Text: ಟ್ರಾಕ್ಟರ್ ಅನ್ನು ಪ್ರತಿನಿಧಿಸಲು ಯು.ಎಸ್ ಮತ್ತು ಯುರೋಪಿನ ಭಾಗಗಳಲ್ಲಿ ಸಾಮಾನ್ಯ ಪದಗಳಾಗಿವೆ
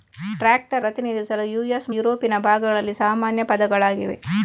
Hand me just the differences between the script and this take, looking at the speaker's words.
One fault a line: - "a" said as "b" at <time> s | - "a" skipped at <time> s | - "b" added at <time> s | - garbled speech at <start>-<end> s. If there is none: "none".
- "ಅನ್ನು" skipped at 0.8 s
- "ಮತ್ತು" skipped at 1.9 s